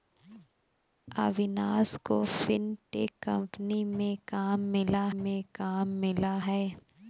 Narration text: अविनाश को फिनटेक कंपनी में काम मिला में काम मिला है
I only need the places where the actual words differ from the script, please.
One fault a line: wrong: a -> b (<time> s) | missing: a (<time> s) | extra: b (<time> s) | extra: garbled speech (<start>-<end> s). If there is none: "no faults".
no faults